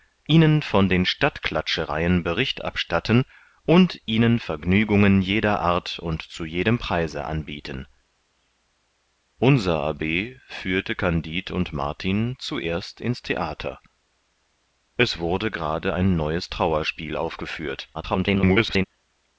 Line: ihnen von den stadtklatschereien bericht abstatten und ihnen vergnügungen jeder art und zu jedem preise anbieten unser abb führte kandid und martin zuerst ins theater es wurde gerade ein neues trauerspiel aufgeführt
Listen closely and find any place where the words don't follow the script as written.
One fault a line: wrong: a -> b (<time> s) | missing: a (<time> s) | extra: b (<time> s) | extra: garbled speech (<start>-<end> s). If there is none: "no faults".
extra: garbled speech (17.9-18.8 s)